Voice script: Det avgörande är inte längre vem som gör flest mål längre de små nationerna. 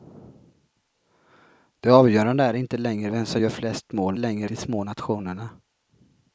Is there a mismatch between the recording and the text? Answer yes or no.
no